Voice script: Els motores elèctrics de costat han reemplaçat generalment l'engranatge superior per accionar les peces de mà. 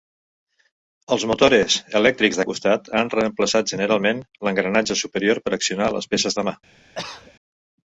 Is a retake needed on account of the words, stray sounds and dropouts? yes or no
yes